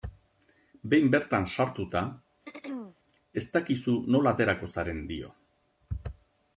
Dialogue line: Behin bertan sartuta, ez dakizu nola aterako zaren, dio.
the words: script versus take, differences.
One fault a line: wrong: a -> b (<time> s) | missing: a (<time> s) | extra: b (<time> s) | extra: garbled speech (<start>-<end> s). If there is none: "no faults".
no faults